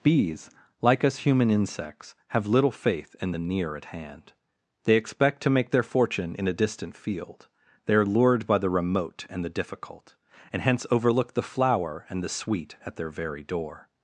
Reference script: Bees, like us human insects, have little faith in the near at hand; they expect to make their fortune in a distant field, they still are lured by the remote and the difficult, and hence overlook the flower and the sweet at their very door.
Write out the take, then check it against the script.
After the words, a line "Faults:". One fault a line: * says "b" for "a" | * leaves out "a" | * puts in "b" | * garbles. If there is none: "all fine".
Bees, like us human insects, have little faith in the near at hand; they expect to make their fortune in a distant field, they are lured by the remote and the difficult, and hence overlook the flower and the sweet at their very door.
Faults:
* leaves out "still"